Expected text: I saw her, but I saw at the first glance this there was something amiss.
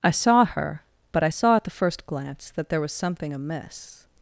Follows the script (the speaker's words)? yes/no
no